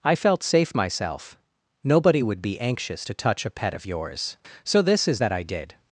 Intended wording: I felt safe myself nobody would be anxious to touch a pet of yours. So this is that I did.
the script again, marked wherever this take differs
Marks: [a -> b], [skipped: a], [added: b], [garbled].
I felt safe myself nobody would be anxious to touch a pet of yours. So this is that I did.